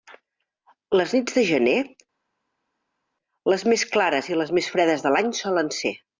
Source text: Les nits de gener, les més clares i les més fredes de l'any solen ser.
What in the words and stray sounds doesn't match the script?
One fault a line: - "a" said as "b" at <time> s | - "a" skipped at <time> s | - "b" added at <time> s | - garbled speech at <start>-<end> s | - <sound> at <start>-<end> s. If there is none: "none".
none